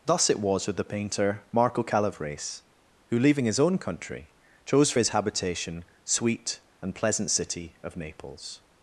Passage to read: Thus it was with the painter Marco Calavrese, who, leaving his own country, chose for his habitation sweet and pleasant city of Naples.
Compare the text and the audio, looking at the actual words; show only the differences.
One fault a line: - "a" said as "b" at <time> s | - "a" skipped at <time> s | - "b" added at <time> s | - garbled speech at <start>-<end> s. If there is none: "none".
none